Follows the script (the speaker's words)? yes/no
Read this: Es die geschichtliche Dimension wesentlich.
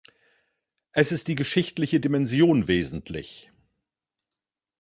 no